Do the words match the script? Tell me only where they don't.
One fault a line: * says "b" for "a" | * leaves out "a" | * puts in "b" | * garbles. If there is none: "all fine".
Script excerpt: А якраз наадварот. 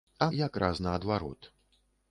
all fine